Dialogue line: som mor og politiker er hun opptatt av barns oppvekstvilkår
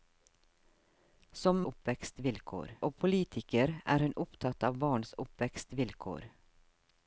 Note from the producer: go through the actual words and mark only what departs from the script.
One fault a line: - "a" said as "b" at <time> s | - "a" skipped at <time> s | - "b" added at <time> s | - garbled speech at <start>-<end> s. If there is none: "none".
- "mor" said as "oppvekstvilkår" at 1.7 s